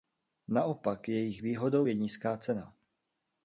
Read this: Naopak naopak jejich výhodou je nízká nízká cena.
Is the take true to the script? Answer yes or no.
no